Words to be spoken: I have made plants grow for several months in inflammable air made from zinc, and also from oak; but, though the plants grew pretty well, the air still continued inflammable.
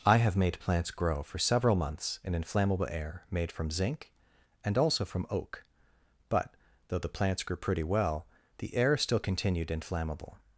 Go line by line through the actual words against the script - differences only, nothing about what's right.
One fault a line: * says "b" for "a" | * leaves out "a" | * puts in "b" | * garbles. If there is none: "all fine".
all fine